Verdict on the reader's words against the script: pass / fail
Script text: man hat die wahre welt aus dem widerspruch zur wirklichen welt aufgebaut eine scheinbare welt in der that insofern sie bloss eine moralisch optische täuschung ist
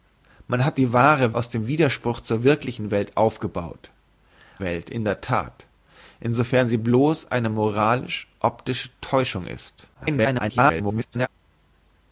fail